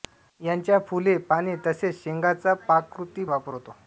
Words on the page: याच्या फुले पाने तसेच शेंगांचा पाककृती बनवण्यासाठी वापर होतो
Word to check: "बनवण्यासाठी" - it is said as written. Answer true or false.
false